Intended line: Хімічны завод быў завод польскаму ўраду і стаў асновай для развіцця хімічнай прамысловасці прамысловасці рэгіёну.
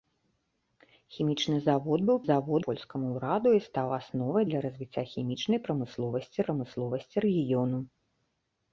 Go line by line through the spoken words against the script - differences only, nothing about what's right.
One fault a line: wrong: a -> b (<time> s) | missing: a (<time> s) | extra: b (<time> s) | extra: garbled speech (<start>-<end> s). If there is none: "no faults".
no faults